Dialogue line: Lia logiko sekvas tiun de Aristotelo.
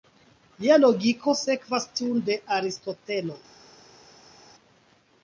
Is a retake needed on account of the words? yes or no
no